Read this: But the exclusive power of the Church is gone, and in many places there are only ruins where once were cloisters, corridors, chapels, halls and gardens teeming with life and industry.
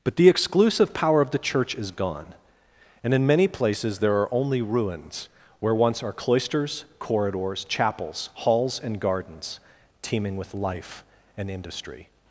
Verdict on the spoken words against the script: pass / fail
fail